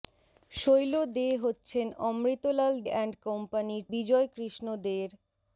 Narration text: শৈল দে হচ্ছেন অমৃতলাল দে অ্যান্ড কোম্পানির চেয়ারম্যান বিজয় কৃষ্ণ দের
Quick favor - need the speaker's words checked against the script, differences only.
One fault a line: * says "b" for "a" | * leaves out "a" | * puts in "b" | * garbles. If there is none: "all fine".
* leaves out "দে"
* leaves out "চেয়ারম্যান"